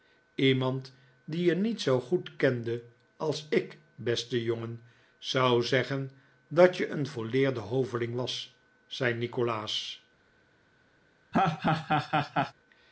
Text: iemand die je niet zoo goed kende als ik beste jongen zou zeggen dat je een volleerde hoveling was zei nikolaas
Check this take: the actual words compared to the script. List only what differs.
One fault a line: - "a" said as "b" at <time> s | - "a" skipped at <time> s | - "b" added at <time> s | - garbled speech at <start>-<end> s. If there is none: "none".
none